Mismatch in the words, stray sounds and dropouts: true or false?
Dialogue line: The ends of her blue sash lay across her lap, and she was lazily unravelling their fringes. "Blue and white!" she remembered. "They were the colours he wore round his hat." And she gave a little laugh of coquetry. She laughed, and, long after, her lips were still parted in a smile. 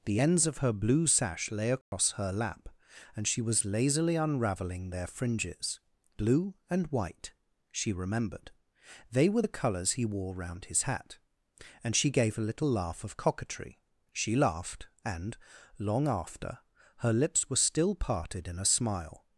true